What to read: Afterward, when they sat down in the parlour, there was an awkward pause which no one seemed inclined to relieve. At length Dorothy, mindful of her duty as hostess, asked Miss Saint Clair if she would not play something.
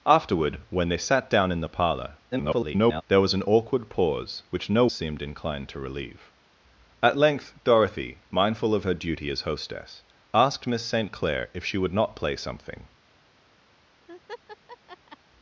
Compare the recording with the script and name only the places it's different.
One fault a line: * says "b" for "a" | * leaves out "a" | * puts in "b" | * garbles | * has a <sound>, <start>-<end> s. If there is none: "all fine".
* garbles
* leaves out "one"
* has a laugh, 14.1-15.2 s